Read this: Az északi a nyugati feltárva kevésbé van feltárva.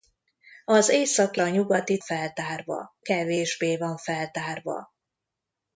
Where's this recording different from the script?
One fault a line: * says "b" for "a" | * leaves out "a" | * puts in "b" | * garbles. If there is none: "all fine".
all fine